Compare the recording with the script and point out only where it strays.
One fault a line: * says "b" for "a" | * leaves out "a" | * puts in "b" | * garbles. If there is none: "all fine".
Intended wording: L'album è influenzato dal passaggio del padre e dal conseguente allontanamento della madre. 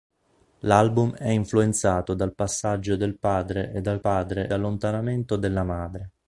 * says "padre" for "conseguente"